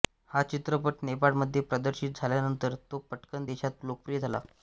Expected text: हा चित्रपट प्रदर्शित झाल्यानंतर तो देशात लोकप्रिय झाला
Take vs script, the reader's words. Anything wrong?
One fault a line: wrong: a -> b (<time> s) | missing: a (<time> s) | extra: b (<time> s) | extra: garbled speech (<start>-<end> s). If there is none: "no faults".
extra: नेपाळमध्ये (1.0 s)
extra: पटकन (3.1 s)